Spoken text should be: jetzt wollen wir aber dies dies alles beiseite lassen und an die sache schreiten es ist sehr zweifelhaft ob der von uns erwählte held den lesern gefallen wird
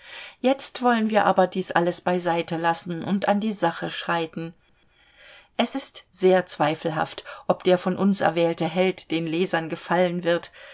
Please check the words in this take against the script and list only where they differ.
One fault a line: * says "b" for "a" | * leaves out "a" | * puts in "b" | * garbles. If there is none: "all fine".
* leaves out "dies"